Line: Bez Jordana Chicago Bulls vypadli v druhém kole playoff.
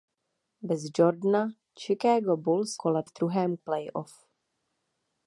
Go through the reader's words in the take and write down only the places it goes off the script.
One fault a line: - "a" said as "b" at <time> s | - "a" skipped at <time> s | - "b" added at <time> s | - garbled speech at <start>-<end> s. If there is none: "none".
- "vypadli" said as "kole" at 2.8 s
- "kole" skipped at 3.6 s